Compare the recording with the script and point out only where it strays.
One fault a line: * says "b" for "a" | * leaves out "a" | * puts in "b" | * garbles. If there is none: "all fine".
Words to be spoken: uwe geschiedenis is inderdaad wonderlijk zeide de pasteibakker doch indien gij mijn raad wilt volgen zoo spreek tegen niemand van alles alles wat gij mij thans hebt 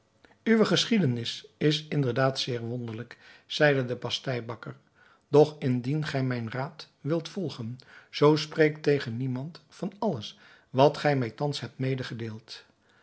* puts in "zeer"
* leaves out "alles"